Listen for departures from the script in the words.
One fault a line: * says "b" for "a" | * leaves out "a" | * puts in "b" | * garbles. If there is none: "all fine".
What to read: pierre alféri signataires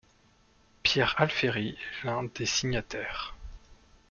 * puts in "est l'un des"